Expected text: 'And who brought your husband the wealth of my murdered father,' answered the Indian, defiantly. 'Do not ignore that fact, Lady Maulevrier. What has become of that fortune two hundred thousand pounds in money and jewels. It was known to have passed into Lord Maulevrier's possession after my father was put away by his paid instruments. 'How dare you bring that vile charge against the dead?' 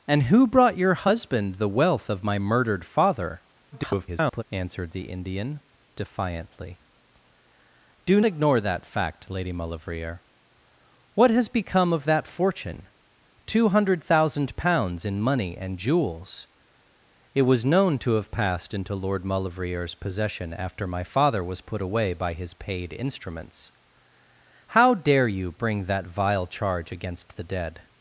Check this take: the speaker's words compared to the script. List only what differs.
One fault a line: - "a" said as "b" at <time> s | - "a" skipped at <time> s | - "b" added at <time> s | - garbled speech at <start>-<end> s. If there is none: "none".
- garbled speech at 3.7-4.4 s
- "not" skipped at 8.2 s